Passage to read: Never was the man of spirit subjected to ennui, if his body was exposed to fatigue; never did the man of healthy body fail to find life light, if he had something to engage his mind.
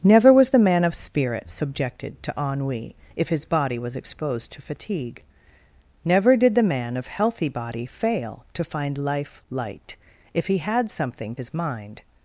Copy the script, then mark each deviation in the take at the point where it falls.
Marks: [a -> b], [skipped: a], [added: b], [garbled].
Never was the man of spirit subjected to ennui, if his body was exposed to fatigue; never did the man of healthy body fail to find life light, if he had something [skipped: to engage] his mind.